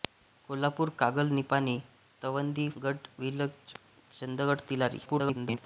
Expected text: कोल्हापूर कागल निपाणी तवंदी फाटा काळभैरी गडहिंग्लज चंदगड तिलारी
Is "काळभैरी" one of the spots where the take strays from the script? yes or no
yes